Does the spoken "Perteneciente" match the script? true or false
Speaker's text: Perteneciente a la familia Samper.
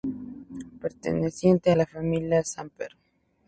true